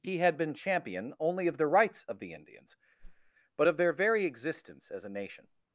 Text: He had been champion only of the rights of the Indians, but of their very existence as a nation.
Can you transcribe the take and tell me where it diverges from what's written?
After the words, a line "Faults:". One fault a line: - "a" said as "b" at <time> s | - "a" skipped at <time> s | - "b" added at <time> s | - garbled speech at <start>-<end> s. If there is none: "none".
He had been champion only of the rights of the Indians, but of their very existence as a nation.
Faults:
none